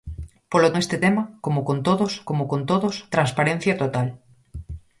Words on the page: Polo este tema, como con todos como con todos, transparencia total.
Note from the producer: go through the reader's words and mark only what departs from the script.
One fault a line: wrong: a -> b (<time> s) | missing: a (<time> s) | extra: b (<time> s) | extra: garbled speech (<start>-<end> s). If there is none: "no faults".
no faults